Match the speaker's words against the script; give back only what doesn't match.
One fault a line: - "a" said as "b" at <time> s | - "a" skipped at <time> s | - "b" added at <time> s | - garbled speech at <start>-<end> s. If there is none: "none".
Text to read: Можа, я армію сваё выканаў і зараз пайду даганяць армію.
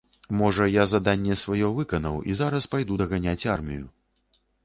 - "армію" said as "заданне" at 0.9 s